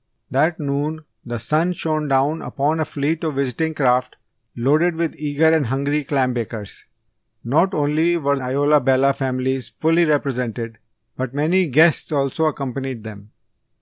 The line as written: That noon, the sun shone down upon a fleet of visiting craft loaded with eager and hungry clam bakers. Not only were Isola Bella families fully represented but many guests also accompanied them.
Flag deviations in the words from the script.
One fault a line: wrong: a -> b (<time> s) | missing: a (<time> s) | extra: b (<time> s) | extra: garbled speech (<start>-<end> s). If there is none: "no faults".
no faults